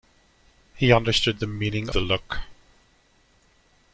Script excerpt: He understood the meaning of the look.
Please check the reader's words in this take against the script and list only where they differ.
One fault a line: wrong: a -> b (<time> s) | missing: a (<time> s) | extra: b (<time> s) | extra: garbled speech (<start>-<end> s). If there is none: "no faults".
missing: of (1.9 s)